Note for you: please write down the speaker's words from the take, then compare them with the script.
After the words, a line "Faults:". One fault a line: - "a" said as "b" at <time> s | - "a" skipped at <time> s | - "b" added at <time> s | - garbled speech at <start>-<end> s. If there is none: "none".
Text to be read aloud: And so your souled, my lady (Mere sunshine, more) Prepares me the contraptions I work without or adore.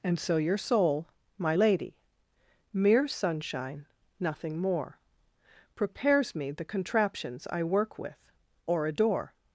And so your soul, my lady (Mere sunshine, nothing more) Prepares me the contraptions I work with or adore.
Faults:
- "souled" said as "soul" at 0.6 s
- "nothing" added at 4.2 s
- "without" said as "with" at 8.0 s